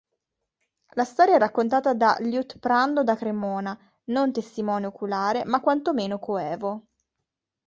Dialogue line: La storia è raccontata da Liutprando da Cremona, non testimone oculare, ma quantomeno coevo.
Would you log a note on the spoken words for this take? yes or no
no